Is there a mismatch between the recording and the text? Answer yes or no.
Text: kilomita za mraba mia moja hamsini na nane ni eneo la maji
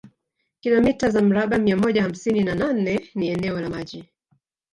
no